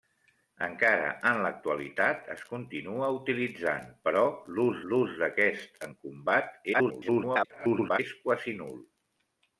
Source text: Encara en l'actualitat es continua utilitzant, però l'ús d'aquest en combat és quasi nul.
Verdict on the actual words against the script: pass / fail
fail